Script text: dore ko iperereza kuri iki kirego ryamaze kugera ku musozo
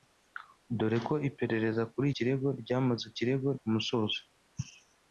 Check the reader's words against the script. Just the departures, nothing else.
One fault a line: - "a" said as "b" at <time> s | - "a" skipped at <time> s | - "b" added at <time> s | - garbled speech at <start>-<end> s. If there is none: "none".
- "iki" skipped at 2.1 s
- "kugera" said as "kirego" at 3.2 s